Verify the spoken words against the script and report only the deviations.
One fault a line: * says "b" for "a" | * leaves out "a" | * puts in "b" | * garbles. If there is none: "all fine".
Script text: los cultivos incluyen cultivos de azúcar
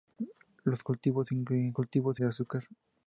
all fine